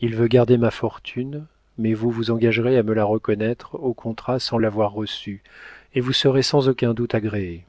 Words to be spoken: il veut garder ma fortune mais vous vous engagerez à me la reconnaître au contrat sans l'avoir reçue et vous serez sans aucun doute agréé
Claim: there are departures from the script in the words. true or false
false